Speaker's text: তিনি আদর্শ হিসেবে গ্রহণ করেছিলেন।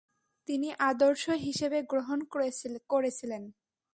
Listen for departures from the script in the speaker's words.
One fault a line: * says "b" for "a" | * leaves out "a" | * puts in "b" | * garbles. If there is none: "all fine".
all fine